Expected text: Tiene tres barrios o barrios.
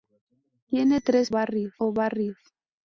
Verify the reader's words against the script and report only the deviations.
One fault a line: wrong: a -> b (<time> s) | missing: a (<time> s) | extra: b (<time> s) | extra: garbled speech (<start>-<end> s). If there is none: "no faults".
no faults